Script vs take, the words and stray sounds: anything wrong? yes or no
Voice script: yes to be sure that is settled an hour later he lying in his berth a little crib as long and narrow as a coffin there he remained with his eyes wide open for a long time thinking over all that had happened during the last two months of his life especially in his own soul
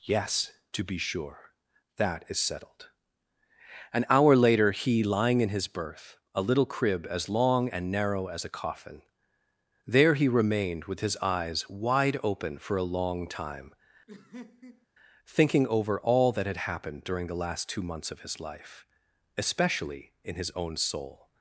yes